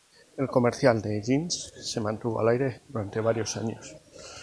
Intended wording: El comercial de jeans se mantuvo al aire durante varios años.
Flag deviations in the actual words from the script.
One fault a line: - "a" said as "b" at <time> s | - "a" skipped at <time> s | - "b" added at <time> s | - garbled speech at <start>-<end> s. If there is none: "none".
none